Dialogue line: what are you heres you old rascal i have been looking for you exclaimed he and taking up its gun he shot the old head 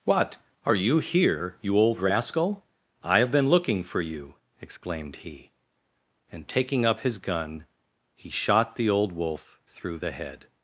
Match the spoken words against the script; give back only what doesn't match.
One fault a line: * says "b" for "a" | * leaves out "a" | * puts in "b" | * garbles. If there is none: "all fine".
* says "here" for "heres"
* says "his" for "its"
* puts in "wolf through the"